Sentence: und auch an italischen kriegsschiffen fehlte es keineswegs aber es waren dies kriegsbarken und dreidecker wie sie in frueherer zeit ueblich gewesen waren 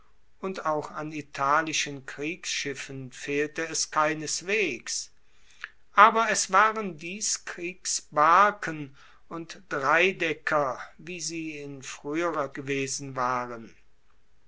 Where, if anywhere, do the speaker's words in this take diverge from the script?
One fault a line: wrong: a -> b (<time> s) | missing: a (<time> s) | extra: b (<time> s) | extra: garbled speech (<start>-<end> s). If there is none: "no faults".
missing: zeit ueblich (12.5 s)